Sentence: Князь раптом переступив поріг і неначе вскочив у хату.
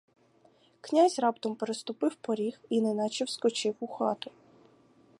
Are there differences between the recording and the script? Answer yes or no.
no